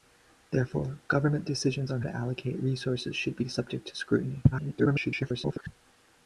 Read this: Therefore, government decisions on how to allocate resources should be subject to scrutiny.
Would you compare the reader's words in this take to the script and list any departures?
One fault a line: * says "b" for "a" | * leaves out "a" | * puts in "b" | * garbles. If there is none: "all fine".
* leaves out "how"
* garbles